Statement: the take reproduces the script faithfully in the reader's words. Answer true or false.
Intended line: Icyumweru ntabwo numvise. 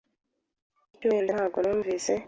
true